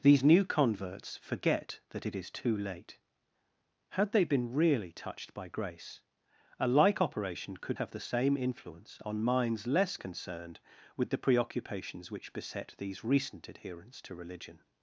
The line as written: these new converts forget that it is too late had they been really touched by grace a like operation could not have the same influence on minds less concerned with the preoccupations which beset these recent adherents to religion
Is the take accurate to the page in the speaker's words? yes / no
no